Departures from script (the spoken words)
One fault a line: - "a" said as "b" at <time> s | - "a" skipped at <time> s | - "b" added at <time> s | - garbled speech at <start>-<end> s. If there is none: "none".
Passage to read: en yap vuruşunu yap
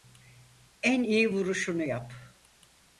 - "yap" said as "iyi" at 1.0 s